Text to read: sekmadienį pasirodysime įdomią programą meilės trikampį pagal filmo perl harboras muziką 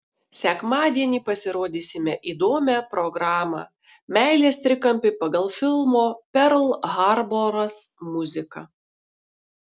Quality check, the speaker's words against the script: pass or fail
pass